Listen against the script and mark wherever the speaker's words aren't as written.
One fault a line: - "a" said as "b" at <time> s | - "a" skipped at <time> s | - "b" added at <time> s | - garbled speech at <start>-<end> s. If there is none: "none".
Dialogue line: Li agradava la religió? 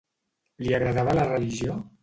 none